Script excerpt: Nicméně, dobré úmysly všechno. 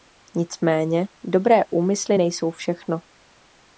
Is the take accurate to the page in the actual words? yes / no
no